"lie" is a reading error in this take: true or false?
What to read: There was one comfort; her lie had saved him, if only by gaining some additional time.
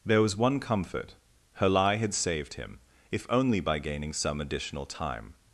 false